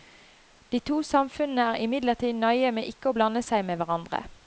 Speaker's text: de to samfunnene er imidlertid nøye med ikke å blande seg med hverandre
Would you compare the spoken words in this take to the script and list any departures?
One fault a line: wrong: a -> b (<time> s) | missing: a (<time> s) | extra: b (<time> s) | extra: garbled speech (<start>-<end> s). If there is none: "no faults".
no faults